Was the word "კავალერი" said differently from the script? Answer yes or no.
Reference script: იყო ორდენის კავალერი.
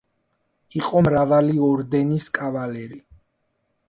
no